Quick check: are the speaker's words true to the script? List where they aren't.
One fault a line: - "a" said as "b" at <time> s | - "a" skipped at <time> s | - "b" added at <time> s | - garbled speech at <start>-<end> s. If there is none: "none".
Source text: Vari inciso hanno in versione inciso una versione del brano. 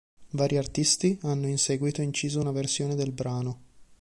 - "inciso" said as "artisti" at 0.6 s
- "versione" said as "seguito" at 1.6 s